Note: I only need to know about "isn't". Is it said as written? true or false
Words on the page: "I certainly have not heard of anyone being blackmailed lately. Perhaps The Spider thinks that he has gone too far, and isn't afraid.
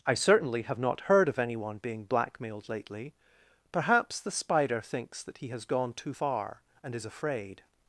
false